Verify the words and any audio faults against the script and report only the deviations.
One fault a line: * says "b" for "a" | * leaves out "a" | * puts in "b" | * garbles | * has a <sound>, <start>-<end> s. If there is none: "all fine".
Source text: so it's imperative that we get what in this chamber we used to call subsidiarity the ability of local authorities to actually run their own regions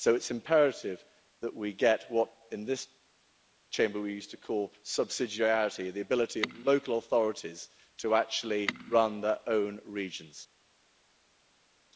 all fine